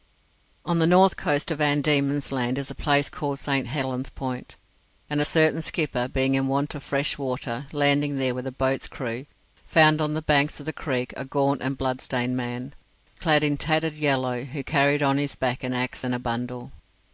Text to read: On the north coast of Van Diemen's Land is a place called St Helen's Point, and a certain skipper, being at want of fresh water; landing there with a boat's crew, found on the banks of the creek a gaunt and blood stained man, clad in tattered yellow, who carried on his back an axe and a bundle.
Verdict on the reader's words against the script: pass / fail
fail